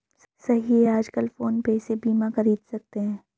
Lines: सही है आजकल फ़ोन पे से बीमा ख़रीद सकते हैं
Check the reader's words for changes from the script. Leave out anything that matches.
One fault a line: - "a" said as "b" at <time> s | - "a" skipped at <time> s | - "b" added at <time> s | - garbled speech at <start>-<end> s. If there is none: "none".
none